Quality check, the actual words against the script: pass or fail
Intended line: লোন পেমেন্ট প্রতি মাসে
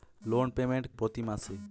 pass